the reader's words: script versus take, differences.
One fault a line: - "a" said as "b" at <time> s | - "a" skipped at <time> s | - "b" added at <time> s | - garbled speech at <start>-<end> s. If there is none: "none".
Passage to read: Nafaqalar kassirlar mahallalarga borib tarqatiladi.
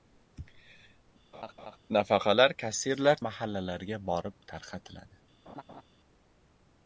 none